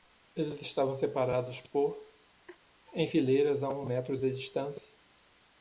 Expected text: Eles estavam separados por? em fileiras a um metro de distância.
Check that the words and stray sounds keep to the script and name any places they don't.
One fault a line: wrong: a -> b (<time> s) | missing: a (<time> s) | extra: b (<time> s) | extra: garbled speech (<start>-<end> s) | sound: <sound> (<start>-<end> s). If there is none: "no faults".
sound: laugh (2.5-2.6 s)